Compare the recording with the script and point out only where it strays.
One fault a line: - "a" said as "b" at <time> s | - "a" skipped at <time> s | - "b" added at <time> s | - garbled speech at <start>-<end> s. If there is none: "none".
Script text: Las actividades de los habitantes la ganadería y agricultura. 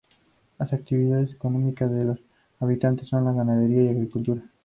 - "económicas" added at 1.3 s
- "son" added at 3.1 s